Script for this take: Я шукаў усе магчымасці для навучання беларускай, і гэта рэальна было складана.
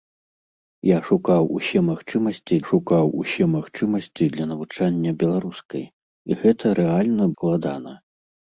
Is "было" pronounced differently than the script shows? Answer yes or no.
yes